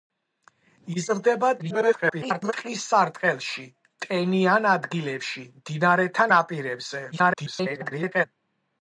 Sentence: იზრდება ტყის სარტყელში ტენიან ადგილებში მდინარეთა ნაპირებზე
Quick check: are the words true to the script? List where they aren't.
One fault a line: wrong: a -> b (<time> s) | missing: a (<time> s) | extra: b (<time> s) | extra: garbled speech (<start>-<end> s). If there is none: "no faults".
extra: garbled speech (1.6-2.5 s)
extra: garbled speech (7.1-8.3 s)